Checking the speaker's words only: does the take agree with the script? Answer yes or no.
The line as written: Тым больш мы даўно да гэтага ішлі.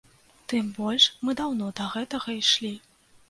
yes